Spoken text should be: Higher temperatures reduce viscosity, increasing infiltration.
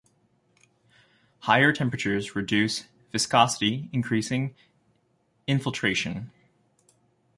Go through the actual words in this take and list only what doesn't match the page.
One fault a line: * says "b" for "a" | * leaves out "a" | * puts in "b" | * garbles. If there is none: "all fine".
all fine